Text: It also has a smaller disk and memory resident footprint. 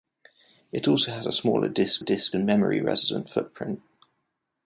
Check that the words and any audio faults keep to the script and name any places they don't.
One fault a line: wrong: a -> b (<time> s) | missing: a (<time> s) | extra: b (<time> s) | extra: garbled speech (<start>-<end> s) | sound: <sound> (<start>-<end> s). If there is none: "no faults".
extra: disk (2.0 s)